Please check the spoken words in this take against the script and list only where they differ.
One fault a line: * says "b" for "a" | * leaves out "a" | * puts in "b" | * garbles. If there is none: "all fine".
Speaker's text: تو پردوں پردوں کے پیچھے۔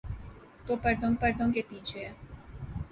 all fine